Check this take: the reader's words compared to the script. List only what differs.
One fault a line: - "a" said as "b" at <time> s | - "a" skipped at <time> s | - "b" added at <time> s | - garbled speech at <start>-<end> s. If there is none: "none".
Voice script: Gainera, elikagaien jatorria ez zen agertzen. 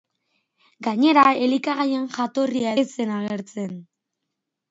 none